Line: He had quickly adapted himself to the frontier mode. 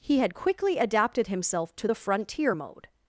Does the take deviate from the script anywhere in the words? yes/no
no